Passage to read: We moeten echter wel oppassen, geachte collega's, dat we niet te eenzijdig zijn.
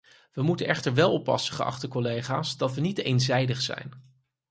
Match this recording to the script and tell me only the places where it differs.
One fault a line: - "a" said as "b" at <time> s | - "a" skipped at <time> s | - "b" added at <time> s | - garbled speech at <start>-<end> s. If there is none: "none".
none